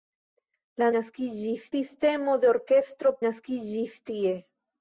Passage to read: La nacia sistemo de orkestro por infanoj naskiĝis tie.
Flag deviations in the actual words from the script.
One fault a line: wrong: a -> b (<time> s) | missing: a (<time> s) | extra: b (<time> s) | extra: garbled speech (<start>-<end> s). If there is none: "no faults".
wrong: nacia -> naskiĝis (1.0 s)
missing: por infanoj (3.1 s)